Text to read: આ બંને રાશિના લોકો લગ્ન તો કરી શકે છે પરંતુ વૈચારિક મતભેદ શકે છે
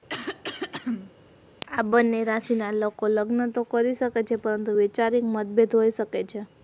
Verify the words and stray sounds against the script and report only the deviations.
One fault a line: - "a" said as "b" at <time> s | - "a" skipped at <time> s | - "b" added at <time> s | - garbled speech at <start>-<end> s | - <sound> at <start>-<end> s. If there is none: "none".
- throat clearing at 0.1-1.1 s
- "હોઈ" added at 5.7 s